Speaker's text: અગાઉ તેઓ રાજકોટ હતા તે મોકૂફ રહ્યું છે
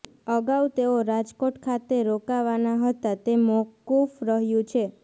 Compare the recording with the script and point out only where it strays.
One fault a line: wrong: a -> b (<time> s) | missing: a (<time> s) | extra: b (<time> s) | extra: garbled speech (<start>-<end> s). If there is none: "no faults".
extra: ખાતે રોકાવાના (1.6 s)